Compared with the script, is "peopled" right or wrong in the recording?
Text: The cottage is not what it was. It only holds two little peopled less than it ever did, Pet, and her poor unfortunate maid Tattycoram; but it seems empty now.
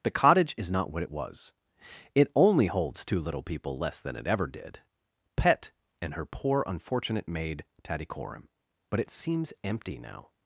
wrong